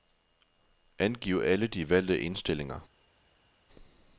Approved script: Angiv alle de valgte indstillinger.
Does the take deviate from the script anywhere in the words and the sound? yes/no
no